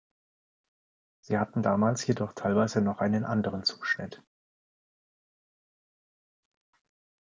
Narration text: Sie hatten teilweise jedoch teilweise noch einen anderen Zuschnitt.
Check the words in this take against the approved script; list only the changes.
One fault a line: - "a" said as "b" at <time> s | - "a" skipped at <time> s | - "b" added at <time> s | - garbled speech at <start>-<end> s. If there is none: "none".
- "teilweise" said as "damals" at 1.6 s